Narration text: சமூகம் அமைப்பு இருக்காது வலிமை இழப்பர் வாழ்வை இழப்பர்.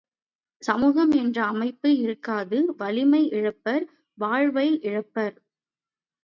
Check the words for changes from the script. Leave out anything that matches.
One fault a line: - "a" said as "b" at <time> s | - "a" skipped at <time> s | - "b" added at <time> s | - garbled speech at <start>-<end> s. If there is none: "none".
- "என்ற" added at 1.1 s